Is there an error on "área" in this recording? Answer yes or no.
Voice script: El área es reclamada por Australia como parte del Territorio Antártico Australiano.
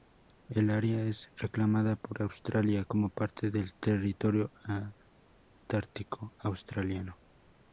no